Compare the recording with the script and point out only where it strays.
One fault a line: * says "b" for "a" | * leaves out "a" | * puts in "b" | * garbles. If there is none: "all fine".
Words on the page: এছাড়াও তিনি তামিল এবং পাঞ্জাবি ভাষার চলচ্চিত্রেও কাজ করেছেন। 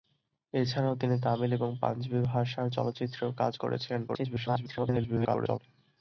* garbles